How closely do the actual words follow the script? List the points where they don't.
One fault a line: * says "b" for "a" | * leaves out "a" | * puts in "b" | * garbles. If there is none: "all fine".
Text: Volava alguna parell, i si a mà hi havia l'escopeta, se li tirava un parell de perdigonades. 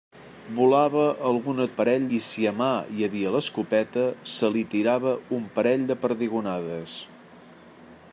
all fine